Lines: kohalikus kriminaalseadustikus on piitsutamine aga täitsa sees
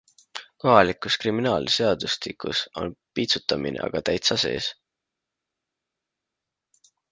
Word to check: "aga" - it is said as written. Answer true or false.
true